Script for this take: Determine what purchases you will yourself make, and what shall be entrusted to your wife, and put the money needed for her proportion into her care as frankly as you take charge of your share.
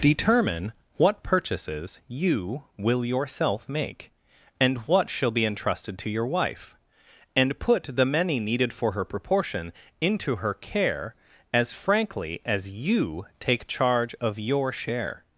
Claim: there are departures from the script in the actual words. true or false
true